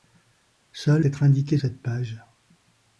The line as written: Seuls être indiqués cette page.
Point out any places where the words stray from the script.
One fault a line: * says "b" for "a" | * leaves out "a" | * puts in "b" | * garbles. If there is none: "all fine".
all fine